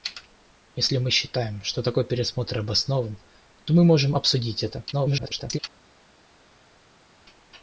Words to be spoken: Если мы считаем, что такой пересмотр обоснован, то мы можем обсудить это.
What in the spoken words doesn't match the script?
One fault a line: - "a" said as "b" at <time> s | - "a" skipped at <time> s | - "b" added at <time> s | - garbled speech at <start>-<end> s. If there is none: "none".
- garbled speech at 4.9-5.6 s